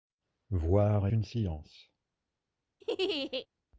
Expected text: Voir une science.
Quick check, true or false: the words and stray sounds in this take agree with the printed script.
false